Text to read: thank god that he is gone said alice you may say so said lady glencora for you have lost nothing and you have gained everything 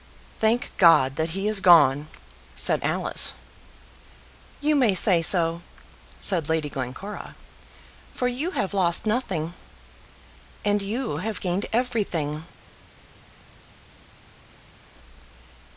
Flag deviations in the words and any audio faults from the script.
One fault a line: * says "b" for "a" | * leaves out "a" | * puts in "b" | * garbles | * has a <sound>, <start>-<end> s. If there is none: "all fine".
all fine